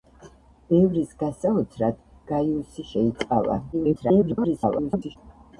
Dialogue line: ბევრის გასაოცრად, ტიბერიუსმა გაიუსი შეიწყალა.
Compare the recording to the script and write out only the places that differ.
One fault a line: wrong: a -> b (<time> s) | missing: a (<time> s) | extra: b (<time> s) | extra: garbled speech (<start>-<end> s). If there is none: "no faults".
missing: ტიბერიუსმა (2.0 s)
extra: garbled speech (3.7-5.2 s)